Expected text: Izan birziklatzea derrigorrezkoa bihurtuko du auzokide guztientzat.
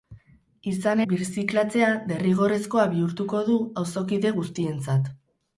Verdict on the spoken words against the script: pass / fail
pass